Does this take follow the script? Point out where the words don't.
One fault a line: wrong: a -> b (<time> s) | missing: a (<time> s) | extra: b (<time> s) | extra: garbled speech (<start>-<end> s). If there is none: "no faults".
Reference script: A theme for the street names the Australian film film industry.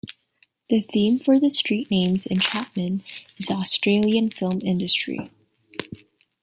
wrong: A -> The (0.7 s)
extra: in Chapman is (2.2 s)
missing: film (4.6 s)